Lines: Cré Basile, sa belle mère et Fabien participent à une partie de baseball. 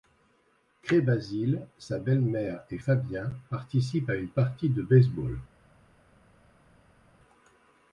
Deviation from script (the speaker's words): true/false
false